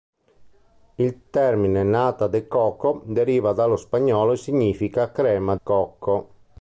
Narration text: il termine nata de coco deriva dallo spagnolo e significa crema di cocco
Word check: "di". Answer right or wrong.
wrong